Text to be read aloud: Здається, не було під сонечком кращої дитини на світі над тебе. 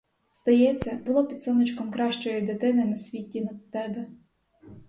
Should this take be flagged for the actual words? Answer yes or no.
yes